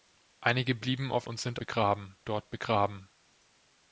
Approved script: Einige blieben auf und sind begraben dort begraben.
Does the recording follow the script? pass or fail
pass